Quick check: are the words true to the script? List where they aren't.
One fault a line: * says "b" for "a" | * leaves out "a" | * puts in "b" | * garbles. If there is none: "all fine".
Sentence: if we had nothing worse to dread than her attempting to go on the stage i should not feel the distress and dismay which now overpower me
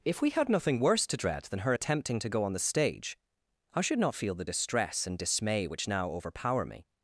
all fine